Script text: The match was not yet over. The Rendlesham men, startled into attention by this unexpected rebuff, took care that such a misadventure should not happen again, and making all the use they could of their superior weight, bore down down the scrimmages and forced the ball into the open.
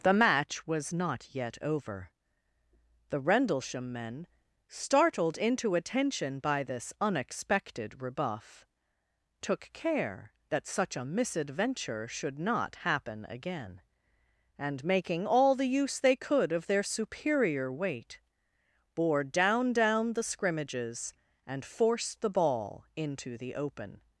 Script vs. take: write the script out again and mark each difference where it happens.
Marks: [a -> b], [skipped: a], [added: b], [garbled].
The match was not yet over. The Rendlesham men, startled into attention by this unexpected rebuff, took care that such a misadventure should not happen again, and making all the use they could of their superior weight, bore down down the scrimmages and forced the ball into the open.